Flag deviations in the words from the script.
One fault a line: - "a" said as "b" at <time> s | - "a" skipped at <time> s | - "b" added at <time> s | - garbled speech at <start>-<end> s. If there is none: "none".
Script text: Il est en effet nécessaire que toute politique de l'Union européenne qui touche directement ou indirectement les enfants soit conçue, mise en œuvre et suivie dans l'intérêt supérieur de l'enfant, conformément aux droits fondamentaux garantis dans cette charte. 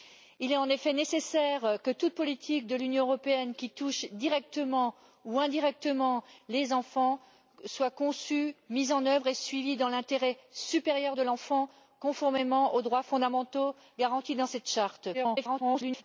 - garbled speech at 15.1-16.0 s